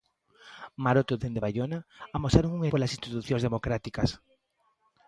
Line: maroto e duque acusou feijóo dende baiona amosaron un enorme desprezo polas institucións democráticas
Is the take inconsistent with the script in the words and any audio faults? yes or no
yes